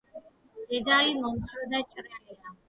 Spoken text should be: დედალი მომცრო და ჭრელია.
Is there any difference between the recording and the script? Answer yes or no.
no